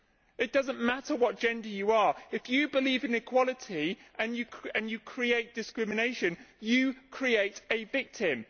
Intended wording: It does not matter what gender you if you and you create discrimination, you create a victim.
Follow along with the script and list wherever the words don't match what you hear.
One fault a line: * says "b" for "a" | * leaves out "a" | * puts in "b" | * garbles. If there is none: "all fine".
* puts in "are"
* puts in "believe in equality"